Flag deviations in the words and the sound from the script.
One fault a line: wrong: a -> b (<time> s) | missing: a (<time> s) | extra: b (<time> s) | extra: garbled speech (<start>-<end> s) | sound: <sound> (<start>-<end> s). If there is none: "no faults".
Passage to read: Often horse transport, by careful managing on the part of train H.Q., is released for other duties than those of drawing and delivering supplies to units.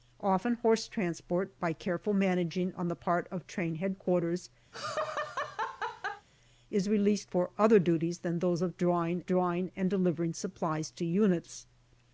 sound: laugh (4.7-6.3 s)
extra: drawing (9.3 s)